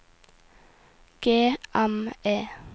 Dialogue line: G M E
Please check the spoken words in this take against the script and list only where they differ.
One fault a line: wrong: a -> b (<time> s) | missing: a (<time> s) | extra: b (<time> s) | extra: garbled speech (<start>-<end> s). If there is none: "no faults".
no faults